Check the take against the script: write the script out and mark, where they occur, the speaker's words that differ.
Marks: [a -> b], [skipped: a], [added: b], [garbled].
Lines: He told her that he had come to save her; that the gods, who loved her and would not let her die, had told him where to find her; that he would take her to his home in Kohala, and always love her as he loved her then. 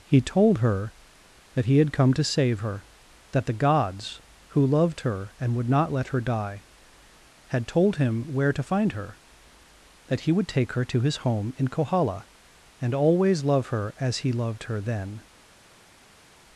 He told her that he had come to save her; that the gods, who loved her and would not let her die, had told him where to find her; that he would take her to his home in Kohala, and always love her as he loved her then.